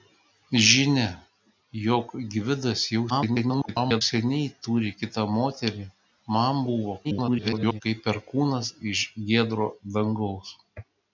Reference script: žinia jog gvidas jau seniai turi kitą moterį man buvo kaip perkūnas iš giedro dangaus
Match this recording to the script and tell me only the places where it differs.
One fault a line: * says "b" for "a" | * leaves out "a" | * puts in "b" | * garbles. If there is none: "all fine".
* garbles
* garbles